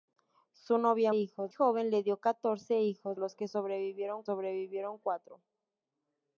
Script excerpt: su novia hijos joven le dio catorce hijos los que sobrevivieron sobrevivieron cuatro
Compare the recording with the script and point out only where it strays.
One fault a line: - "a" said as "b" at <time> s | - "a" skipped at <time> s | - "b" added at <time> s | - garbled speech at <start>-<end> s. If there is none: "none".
none